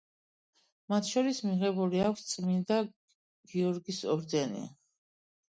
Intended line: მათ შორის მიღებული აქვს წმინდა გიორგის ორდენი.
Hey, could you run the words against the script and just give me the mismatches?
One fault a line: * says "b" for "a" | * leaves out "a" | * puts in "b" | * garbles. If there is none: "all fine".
all fine